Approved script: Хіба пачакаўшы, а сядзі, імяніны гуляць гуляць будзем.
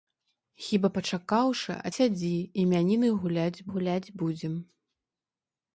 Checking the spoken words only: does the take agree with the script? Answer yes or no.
yes